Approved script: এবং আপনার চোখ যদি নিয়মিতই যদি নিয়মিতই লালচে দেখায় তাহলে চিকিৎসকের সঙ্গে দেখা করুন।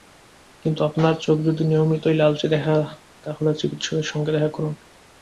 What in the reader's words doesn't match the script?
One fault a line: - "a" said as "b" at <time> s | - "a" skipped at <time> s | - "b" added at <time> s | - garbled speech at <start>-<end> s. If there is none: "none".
- "এবং" said as "কিন্তু" at 0.7 s
- "যদি নিয়মিতই" skipped at 2.1 s